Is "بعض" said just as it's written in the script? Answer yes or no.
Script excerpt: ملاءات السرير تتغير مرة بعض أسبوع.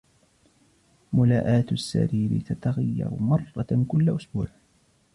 no